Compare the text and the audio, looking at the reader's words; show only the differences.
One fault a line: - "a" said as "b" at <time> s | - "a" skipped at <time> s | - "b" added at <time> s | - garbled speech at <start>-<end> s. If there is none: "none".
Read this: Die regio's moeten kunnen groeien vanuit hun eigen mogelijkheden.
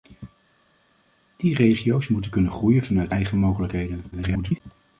- "hun" skipped at 3.1 s
- garbled speech at 4.1-4.6 s